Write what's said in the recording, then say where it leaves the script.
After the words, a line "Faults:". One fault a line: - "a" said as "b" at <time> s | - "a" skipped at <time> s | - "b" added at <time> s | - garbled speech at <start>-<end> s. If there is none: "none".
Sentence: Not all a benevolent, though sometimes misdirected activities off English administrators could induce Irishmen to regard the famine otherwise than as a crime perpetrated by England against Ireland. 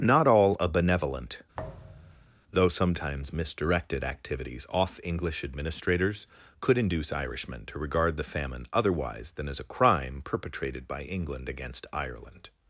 Not all a benevolent, though sometimes misdirected activities off English administrators could induce Irishmen to regard the famine otherwise than as a crime perpetrated by England against Ireland.
Faults:
none